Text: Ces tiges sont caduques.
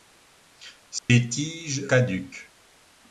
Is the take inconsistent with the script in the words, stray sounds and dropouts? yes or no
yes